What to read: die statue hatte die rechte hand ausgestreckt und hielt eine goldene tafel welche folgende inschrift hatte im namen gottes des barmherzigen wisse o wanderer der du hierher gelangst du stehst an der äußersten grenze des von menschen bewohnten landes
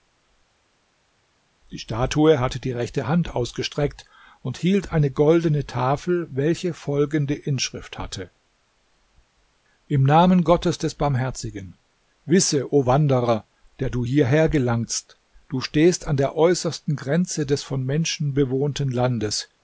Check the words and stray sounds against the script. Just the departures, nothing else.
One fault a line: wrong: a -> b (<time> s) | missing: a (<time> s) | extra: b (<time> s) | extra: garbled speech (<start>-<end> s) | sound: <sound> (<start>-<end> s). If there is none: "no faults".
no faults